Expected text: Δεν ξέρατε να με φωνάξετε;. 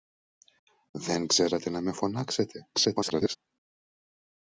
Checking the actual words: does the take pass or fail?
fail